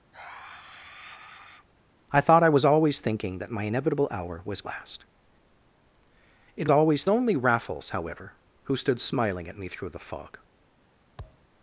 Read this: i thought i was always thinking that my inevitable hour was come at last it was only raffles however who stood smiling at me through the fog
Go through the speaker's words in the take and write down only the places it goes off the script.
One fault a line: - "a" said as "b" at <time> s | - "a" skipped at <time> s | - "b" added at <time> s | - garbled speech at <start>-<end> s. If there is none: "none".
- "come at" skipped at 4.6 s
- "was" said as "always" at 6.7 s